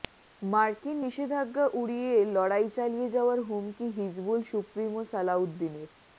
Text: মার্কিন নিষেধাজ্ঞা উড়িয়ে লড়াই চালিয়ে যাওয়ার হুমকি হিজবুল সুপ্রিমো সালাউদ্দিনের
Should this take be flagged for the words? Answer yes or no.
no